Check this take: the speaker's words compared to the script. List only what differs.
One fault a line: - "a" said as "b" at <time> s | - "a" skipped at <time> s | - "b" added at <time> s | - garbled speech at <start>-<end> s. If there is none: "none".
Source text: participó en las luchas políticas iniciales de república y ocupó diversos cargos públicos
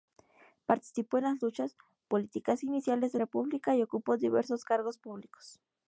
none